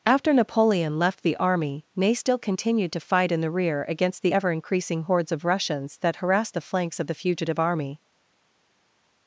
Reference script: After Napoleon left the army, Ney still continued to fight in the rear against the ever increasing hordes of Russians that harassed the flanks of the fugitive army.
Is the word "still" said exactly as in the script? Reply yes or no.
yes